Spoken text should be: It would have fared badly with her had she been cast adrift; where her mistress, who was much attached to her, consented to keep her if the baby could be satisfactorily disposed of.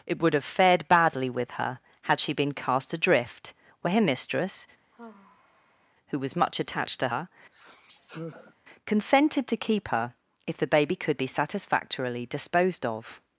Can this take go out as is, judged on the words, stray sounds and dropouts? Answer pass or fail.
fail